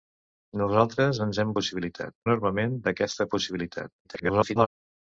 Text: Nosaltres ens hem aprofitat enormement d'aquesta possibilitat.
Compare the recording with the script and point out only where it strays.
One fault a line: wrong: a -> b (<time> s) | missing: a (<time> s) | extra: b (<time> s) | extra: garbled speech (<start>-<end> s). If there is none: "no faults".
wrong: aprofitat -> possibilitat (1.6 s)
extra: garbled speech (4.0-4.7 s)